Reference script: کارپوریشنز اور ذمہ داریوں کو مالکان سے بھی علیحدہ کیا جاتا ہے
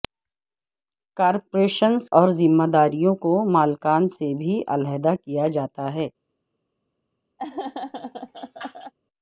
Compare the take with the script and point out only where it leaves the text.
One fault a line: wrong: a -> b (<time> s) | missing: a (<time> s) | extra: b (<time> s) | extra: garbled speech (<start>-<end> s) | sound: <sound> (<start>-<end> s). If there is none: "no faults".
sound: laugh (7.4-8.9 s)